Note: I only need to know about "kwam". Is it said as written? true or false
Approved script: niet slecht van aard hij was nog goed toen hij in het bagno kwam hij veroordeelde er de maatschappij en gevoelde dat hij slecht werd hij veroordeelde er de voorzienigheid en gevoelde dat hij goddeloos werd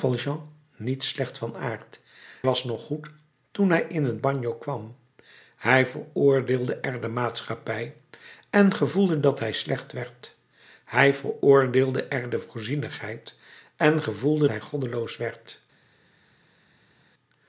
true